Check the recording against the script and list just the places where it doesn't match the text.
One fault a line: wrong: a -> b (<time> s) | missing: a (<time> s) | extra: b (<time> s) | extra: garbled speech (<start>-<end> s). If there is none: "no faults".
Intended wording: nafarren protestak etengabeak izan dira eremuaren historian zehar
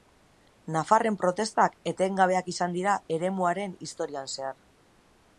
no faults